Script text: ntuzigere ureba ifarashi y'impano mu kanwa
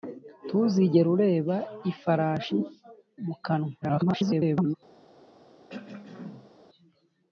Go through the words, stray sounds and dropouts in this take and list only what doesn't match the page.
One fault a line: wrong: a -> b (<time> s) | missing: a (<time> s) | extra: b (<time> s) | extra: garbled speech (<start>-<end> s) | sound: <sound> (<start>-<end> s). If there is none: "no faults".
missing: y'impano (2.6 s)
extra: garbled speech (3.8-4.8 s)
sound: throat clearing (5.7-6.5 s)